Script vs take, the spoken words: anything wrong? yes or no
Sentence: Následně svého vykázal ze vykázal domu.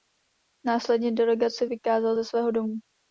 yes